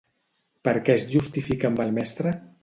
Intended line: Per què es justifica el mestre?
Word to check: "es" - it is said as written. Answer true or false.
true